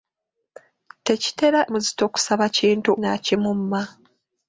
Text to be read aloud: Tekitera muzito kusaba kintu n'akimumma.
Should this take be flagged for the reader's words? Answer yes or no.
no